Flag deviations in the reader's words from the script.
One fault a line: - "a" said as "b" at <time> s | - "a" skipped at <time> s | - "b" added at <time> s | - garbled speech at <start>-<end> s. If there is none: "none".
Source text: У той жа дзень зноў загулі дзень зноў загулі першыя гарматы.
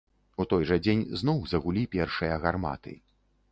- "дзень зноў загулі" skipped at 1.9 s